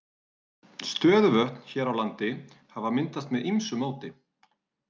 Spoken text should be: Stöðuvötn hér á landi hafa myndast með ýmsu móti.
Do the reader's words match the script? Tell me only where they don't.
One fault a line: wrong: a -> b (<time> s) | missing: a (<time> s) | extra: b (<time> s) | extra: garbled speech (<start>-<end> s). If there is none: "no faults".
no faults